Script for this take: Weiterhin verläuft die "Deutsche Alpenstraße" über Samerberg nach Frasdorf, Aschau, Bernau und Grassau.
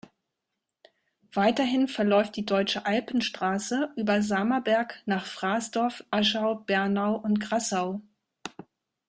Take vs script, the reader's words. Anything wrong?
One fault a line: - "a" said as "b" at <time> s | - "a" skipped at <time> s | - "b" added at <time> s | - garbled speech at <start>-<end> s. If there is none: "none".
none